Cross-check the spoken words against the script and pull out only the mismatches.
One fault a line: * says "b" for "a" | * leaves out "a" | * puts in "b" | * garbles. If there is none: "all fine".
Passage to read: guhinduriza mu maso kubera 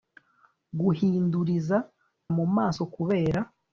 all fine